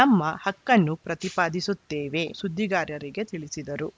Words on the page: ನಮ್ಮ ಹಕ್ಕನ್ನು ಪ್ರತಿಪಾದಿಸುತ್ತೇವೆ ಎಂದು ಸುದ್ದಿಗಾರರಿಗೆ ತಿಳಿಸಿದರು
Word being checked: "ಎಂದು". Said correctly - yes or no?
no